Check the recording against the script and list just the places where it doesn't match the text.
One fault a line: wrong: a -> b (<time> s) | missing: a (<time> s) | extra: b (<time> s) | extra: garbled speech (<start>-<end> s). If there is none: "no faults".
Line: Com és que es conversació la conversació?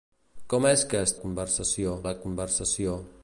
no faults